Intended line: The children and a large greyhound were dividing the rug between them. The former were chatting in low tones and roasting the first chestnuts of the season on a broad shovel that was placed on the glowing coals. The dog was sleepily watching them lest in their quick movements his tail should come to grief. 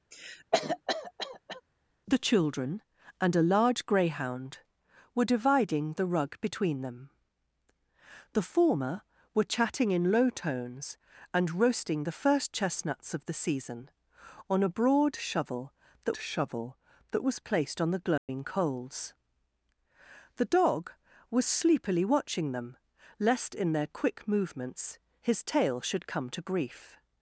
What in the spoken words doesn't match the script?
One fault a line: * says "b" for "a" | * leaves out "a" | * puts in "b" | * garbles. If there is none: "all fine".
* puts in "shovel that"